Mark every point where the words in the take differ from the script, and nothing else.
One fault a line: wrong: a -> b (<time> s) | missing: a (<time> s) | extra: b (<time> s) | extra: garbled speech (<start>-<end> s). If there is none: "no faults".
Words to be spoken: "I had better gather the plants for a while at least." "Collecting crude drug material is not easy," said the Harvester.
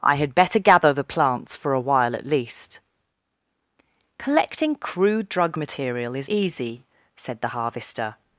missing: not (6.3 s)